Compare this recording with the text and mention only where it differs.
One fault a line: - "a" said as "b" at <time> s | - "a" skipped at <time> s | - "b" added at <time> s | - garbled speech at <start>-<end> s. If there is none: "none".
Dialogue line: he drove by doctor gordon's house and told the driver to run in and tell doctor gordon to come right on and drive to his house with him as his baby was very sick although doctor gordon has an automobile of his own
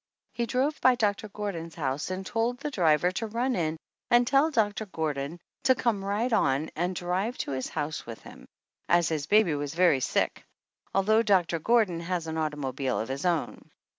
none